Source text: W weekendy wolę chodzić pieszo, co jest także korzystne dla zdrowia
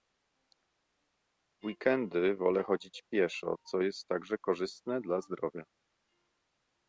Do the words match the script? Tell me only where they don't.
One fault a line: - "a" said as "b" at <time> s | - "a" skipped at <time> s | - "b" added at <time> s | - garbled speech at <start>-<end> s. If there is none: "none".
none